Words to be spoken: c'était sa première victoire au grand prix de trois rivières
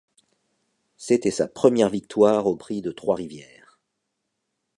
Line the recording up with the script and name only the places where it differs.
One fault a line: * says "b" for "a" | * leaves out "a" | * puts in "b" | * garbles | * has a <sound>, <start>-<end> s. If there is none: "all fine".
* leaves out "grand"